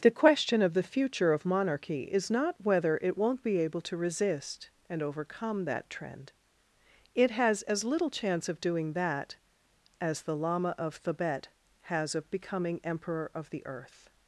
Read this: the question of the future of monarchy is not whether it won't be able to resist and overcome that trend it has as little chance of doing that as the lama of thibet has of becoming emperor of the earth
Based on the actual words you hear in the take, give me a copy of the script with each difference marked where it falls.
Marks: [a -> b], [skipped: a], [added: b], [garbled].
the question of the future of monarchy is not whether it won't be able to resist and overcome that trend it has as little chance of doing that as the lama of thibet has of becoming emperor of the earth